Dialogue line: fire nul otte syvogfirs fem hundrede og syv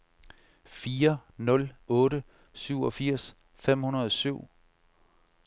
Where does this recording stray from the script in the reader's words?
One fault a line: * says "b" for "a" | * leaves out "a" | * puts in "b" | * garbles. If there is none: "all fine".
all fine